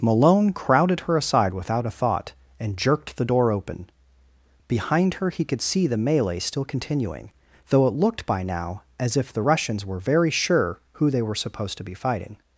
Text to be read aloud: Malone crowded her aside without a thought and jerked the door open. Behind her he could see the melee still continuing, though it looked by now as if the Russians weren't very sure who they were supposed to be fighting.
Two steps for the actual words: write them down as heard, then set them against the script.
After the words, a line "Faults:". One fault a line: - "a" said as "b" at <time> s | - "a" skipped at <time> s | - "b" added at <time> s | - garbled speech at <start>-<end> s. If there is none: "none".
Malone crowded her aside without a thought and jerked the door open. Behind her he could see the melee still continuing, though it looked by now as if the Russians were very sure who they were supposed to be fighting.
Faults:
- "weren't" said as "were" at 9.8 s